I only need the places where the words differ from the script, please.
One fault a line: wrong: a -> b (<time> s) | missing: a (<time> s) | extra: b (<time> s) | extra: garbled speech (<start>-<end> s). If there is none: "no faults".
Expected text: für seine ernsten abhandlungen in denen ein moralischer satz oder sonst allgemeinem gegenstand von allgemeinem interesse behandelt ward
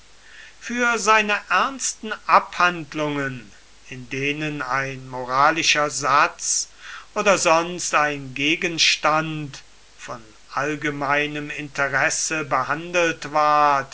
wrong: allgemeinem -> ein (8.0 s)